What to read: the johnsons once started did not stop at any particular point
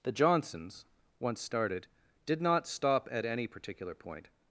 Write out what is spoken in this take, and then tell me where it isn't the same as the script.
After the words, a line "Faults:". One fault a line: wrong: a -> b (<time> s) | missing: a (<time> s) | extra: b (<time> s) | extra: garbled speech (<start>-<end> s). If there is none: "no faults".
the johnsons once started did not stop at any particular point
Faults:
no faults